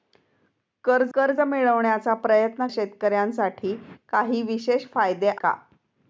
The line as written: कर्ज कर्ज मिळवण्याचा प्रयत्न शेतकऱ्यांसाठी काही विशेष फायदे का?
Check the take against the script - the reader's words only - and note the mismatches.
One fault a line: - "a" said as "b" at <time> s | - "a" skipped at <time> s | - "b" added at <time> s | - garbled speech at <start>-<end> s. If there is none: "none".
none